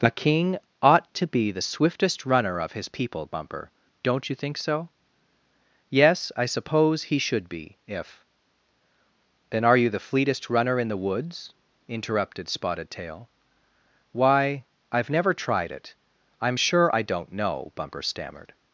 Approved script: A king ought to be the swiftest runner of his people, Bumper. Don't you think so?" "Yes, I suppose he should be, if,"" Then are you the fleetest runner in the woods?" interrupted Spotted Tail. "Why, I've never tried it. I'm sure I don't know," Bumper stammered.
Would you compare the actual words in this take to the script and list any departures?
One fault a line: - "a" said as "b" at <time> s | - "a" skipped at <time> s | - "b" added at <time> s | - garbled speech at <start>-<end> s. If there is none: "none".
none